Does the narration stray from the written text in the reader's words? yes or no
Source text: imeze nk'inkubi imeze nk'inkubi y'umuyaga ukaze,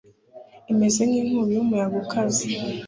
yes